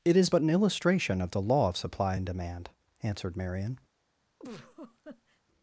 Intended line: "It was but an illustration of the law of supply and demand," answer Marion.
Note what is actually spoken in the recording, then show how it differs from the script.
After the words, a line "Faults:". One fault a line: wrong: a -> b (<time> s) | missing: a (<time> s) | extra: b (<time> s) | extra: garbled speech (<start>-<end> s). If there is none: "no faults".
"It is but an illustration of the law of supply and demand," answered Marion.
Faults:
wrong: was -> is (0.2 s)
wrong: answer -> answered (3.0 s)